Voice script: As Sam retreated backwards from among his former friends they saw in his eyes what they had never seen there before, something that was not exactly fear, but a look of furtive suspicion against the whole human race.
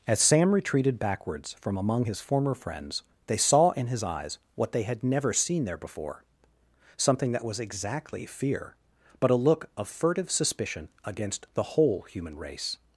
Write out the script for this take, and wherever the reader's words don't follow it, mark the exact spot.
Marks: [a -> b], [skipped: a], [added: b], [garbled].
As Sam retreated backwards from among his former friends they saw in his eyes what they had never seen there before, something that was [skipped: not] exactly fear, but a look of furtive suspicion against the whole human race.